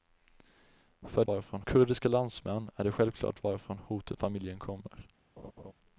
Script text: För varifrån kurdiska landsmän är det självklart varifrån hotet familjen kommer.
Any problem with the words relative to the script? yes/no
no